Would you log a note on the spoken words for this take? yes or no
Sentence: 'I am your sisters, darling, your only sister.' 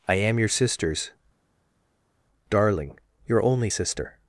no